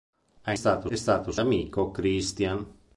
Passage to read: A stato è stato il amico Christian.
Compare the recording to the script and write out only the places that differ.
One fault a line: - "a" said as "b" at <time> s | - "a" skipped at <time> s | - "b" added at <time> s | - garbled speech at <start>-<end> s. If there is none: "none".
none